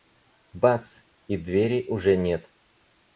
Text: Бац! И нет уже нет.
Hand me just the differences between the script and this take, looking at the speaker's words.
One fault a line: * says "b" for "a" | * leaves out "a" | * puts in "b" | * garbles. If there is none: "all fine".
* says "двери" for "нет"